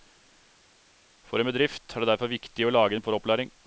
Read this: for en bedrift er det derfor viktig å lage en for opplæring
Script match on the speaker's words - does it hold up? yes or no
yes